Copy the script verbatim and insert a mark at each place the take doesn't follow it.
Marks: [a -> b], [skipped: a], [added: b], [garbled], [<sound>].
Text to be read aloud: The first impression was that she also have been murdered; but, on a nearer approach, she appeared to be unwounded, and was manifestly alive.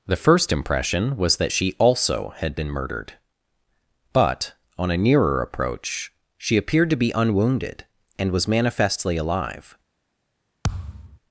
The first impression was that she also [have -> had] been murdered; but, on a nearer approach, she appeared to be unwounded, and was manifestly alive. [thud]